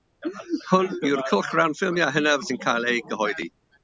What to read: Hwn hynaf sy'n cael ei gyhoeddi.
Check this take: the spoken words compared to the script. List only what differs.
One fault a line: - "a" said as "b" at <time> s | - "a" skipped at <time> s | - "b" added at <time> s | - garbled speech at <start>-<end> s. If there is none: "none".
- "yw'r cylchgrawn ffilmiau" added at 1.1 s